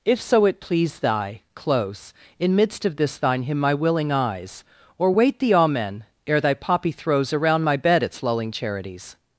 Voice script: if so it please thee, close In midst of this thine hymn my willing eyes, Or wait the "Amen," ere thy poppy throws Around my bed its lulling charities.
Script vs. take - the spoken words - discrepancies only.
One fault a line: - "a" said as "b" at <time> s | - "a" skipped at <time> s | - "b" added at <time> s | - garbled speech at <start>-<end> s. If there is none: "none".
- "thee" said as "thy" at 1.0 s